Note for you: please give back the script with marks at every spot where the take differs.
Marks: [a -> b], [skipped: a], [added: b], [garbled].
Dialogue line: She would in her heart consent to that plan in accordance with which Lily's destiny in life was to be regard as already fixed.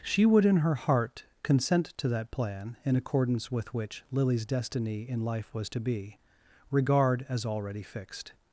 She would in her heart consent to that plan in accordance with which Lily's destiny in life was to be regard as already fixed.